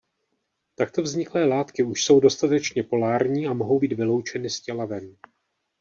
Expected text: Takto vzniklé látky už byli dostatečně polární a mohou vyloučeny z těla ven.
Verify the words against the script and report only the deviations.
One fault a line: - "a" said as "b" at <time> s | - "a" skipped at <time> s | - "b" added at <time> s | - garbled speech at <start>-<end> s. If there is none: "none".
- "byli" said as "jsou" at 2.0 s
- "být" added at 3.8 s